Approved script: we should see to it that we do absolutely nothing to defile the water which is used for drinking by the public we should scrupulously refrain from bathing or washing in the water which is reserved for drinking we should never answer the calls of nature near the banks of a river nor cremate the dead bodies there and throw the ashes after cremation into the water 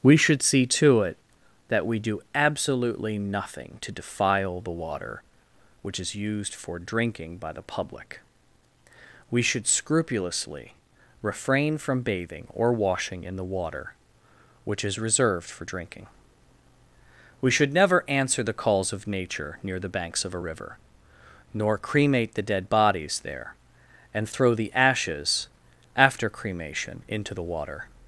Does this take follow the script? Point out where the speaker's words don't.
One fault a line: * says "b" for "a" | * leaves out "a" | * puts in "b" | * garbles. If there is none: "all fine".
all fine